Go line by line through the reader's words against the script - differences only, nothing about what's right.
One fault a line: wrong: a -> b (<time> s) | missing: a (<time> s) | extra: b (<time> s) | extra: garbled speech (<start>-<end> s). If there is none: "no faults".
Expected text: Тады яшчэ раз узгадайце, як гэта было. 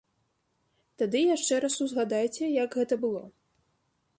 no faults